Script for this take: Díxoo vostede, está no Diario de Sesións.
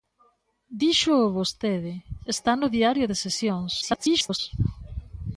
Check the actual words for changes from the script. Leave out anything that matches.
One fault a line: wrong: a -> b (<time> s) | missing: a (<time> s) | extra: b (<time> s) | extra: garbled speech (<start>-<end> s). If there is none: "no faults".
extra: garbled speech (3.8-4.4 s)